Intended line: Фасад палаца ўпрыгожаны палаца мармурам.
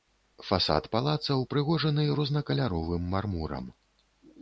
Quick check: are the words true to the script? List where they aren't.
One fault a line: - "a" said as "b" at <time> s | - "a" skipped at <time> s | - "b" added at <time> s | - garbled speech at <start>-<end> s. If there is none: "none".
- "палаца" said as "рознакаляровым" at 2.2 s